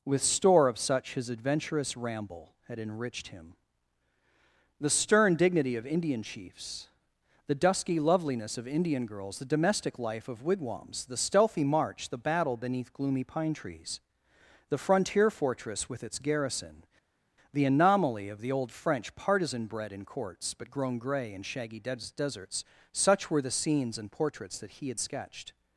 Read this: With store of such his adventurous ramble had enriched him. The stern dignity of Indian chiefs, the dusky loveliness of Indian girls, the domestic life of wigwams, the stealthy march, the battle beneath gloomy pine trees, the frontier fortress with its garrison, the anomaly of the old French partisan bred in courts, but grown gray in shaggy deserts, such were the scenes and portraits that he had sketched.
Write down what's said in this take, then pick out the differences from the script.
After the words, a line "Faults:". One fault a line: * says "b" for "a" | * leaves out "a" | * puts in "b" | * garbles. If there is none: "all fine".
With store of such his adventurous ramble had enriched him. The stern dignity of Indian chiefs, the dusky loveliness of Indian girls, the domestic life of wigwams, the stealthy march, the battle beneath gloomy pine trees, the frontier fortress with its garrison, the anomaly of the old French partisan bred in courts, but grown gray in shaggy des deserts, such were the scenes and portraits that he had sketched.
Faults:
* puts in "des"